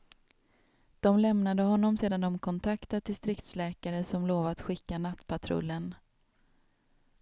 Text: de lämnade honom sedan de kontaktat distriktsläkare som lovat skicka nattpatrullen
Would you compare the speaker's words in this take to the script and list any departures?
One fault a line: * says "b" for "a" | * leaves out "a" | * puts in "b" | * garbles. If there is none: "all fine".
all fine